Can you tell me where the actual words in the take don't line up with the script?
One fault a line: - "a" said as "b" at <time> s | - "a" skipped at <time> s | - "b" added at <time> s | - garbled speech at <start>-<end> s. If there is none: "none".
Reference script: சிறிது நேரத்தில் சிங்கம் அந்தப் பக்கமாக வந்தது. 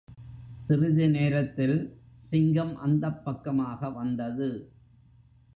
none